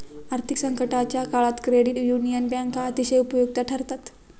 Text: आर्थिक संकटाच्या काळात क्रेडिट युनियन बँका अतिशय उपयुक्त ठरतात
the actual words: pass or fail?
pass